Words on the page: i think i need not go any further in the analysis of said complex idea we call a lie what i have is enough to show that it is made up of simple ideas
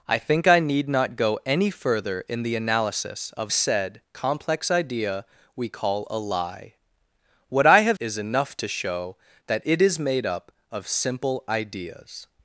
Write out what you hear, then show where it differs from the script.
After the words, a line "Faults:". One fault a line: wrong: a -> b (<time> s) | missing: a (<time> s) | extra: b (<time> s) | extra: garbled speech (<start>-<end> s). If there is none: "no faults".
i think i need not go any further in the analysis of said complex idea we call a lie what i have is enough to show that it is made up of simple ideas
Faults:
no faults